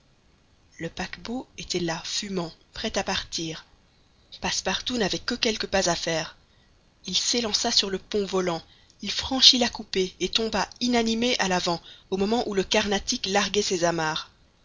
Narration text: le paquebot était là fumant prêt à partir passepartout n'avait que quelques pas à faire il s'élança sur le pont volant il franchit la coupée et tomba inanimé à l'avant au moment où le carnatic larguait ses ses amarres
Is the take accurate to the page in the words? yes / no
no